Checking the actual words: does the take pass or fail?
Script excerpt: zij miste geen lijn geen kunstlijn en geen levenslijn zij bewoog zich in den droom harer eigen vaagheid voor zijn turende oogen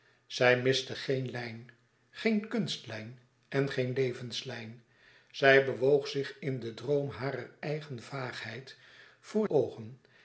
fail